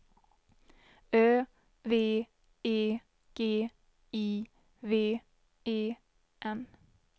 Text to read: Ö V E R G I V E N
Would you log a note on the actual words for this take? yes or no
yes